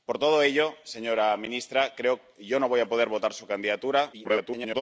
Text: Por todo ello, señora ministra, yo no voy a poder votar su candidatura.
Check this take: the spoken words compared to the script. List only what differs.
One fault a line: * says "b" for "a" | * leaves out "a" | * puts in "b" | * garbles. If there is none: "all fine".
* garbles